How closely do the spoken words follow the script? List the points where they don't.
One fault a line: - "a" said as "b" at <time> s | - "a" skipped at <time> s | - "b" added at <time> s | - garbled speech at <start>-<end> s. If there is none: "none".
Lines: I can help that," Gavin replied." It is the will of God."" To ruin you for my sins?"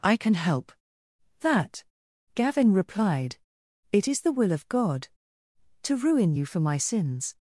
none